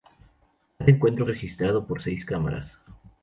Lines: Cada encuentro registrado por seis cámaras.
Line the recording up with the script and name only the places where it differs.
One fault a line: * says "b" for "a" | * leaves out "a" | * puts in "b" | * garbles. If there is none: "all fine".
all fine